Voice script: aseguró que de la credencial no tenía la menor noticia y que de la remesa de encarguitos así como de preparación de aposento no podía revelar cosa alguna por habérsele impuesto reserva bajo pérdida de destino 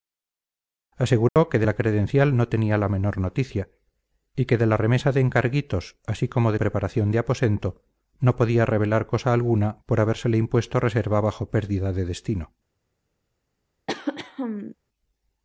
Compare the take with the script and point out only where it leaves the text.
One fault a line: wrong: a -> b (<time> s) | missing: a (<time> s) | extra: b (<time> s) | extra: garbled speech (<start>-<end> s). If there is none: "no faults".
no faults